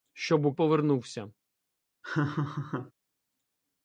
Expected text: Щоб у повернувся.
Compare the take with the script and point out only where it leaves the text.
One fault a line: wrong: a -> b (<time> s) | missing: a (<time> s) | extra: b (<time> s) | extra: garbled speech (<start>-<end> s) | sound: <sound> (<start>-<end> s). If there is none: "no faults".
sound: laugh (2.0-2.9 s)